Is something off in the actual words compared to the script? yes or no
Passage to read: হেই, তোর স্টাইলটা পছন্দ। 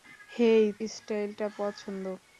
yes